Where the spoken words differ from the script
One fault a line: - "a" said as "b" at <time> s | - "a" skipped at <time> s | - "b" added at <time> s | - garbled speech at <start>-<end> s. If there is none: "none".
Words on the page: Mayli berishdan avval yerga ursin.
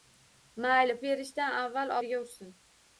none